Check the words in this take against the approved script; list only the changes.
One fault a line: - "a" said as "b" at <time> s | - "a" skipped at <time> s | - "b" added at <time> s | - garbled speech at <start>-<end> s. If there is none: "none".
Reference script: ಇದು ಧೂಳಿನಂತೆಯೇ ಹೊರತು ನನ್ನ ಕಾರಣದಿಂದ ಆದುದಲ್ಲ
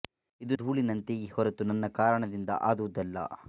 none